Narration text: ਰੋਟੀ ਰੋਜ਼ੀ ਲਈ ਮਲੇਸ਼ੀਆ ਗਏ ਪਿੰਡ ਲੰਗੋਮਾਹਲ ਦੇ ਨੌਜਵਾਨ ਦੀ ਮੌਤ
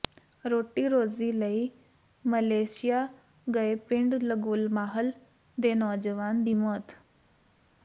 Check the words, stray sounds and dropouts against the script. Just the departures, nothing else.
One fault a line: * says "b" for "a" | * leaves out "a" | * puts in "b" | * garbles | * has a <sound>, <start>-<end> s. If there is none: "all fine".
all fine